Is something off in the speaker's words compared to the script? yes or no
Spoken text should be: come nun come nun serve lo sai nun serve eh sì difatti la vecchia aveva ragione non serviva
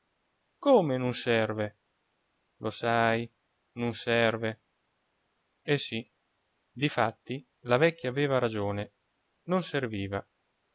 yes